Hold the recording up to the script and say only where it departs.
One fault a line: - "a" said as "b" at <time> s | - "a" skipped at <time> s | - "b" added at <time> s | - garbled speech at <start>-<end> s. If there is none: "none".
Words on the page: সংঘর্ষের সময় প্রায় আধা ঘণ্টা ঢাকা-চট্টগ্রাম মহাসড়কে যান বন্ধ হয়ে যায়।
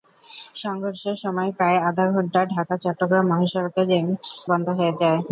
none